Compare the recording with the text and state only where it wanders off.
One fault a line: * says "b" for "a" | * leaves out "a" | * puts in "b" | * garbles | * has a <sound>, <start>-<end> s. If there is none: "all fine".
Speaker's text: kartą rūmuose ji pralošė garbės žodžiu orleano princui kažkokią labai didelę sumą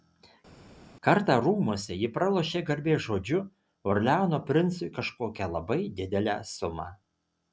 all fine